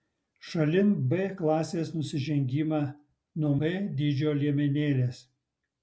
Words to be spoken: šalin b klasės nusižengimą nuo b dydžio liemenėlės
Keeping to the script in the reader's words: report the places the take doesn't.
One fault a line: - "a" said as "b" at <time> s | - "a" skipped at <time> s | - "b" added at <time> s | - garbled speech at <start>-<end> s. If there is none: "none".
none